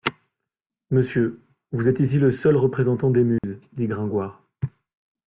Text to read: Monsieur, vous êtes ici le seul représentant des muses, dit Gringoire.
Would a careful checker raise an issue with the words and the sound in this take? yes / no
yes